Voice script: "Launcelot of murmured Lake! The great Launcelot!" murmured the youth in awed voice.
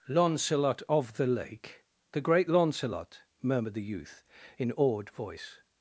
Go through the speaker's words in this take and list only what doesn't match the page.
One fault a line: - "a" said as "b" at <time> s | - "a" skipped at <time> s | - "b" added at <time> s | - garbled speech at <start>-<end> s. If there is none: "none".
- "murmured" said as "the" at 1.2 s